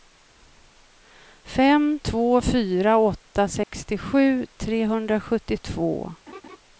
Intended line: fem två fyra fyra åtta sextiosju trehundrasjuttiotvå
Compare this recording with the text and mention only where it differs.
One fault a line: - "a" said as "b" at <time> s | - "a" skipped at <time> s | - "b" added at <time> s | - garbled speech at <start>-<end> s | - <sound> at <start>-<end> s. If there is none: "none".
- "fyra" skipped at 3.0 s
- dropout at 3.6-3.7 s
- laugh at 6.3-6.6 s